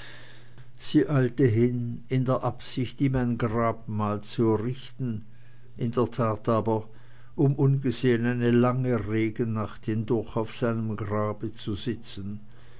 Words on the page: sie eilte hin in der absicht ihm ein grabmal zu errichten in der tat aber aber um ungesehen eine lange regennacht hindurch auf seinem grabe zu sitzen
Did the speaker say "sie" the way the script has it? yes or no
yes